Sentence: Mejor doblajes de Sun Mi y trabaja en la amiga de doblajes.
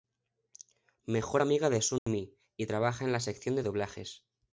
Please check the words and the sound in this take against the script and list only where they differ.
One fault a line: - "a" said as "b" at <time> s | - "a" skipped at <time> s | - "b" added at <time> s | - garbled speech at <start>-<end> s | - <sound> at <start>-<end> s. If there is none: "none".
- "doblajes" said as "amiga" at 1.4 s
- dropout at 2.0-2.1 s
- "amiga" said as "sección" at 3.2 s